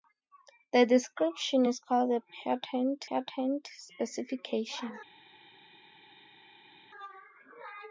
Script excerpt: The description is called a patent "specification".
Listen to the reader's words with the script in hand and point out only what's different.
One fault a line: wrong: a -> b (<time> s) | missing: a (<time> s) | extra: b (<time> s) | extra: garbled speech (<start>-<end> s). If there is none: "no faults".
extra: patent (3.1 s)